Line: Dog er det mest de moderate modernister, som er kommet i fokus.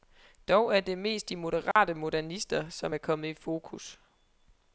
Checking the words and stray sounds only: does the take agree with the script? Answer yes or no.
no